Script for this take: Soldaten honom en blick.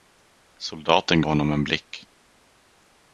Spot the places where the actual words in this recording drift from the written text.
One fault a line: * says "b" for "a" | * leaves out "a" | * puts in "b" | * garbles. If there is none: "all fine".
all fine